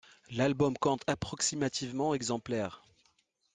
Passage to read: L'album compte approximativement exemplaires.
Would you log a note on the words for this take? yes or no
no